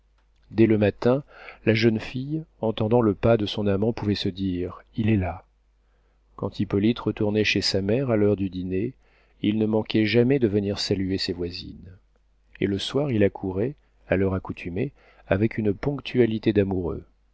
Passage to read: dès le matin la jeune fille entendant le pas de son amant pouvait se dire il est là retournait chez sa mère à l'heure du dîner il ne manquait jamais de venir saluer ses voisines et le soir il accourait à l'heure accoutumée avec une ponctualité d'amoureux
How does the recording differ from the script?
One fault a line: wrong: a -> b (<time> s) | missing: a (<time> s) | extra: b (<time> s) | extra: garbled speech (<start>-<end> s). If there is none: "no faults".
extra: quand hippolyte (6.4 s)